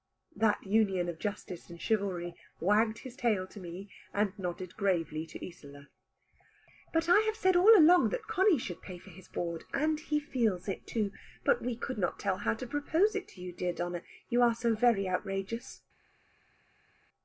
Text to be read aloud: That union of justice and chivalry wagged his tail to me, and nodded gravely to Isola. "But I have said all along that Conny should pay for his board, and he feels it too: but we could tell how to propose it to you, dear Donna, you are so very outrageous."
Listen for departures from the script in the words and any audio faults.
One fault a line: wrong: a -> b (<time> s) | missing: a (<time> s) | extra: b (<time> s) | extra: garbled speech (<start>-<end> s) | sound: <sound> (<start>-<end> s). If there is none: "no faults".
extra: not (12.0 s)